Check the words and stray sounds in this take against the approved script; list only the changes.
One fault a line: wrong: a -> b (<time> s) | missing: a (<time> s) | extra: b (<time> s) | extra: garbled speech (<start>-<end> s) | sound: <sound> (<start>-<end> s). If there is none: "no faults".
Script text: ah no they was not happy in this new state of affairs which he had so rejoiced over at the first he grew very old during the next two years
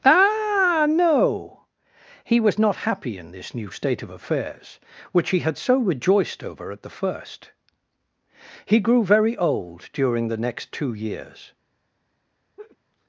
wrong: they -> he (2.2 s)
sound: laugh (12.6-12.8 s)